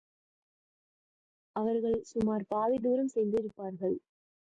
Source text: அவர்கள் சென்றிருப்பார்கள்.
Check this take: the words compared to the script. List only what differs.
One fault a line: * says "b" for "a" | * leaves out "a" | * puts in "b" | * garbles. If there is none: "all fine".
* puts in "சுமார் பாதி தூரம்"